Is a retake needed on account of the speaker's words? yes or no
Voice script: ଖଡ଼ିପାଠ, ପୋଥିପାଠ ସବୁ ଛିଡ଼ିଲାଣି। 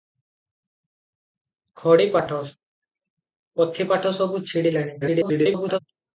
yes